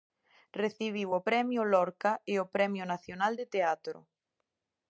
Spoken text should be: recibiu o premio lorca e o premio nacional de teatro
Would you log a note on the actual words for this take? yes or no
no